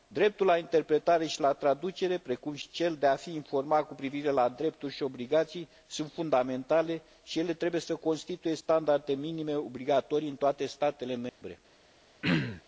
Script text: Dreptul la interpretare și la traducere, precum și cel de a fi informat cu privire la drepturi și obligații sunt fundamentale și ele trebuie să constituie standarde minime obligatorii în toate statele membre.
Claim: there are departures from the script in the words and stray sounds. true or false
true